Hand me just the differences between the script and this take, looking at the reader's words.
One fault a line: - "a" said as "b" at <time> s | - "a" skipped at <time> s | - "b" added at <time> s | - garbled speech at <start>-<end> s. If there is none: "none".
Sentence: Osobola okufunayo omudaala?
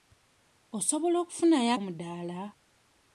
none